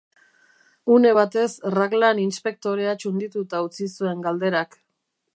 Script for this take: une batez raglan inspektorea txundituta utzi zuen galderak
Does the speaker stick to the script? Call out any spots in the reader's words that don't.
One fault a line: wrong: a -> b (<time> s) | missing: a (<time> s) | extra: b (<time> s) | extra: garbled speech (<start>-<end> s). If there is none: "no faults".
no faults